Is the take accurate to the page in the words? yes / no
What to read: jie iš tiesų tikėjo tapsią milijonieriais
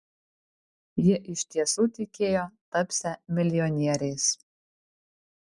yes